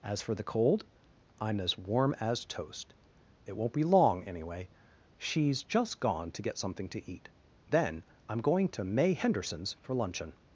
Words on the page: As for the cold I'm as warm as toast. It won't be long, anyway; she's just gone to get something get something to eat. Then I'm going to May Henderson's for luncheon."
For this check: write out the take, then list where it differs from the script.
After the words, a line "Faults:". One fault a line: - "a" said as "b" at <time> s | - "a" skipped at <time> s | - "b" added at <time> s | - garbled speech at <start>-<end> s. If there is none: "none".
As for the cold I'm as warm as toast. It won't be long, anyway; she's just gone to get something to eat. Then I'm going to May Henderson's for luncheon."
Faults:
- "get something" skipped at 6.9 s